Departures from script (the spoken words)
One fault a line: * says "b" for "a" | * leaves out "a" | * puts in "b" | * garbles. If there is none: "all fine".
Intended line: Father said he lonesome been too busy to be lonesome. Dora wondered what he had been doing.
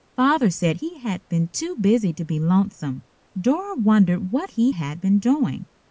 * says "had" for "lonesome"